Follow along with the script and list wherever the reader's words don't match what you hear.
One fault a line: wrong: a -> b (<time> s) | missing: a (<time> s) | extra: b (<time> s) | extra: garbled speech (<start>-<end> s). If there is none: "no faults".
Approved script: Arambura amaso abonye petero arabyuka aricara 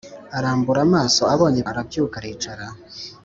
missing: petero (1.6 s)